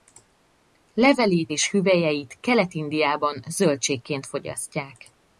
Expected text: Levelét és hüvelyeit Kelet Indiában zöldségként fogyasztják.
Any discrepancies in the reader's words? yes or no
no